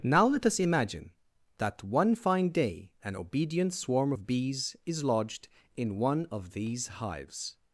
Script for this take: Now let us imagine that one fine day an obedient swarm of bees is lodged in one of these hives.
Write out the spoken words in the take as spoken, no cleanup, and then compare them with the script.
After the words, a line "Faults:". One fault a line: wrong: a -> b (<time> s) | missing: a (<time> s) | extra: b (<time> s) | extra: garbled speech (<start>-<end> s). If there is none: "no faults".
Now let us imagine that one fine day an obedient swarm of bees is lodged in one of these hives.
Faults:
no faults